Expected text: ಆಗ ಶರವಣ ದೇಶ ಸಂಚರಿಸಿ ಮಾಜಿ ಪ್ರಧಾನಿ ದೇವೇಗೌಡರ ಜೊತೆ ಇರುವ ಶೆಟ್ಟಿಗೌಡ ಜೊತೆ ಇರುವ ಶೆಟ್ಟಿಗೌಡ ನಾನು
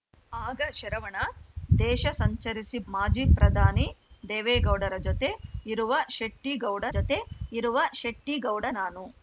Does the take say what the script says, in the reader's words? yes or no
yes